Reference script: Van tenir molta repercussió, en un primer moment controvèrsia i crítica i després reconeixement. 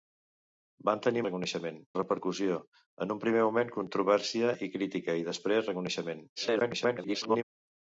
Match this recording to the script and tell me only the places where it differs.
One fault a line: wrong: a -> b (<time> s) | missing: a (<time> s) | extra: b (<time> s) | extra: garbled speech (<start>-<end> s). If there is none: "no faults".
wrong: molta -> reconeixement (1.3 s)
extra: garbled speech (6.4-7.4 s)